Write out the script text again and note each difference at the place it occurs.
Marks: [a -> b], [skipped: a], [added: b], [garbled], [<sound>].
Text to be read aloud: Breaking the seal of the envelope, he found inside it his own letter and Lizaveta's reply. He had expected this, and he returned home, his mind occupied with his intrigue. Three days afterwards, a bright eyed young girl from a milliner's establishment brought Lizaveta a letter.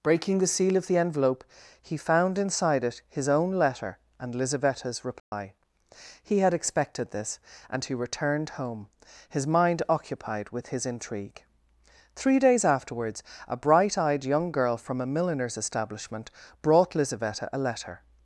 Breaking the seal of the envelope, he found inside it his own letter and Lizaveta's reply. [dropout] He had expected this, and he returned home, his mind occupied with his intrigue. Three days afterwards, a bright eyed young girl from a milliner's establishment brought Lizaveta a letter.